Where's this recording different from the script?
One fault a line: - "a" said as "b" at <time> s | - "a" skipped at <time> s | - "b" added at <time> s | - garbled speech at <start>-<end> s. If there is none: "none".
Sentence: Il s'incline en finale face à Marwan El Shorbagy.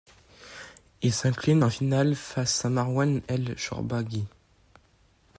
none